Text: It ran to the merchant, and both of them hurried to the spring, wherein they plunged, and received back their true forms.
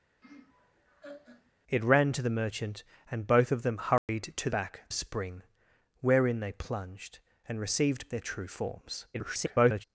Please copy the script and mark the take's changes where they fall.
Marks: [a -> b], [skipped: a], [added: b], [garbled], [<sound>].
[laugh] It ran to the merchant, and both of them hurried [dropout] to [the -> back] spring, wherein they plunged, and received [skipped: back] their true forms. [garbled]